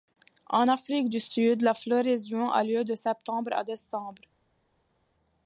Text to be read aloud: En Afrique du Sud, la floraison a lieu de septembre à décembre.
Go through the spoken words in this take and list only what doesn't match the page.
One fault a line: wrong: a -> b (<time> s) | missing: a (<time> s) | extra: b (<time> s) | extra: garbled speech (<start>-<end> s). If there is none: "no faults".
no faults